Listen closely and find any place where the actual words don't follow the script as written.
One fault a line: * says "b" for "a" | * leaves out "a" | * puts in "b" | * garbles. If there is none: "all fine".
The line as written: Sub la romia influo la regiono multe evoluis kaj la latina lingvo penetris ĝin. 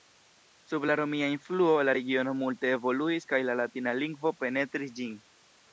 all fine